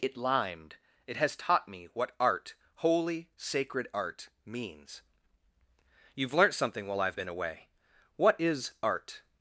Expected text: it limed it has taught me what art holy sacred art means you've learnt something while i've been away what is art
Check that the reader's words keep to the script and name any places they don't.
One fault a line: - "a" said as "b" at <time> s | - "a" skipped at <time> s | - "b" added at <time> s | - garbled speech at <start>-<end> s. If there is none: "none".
none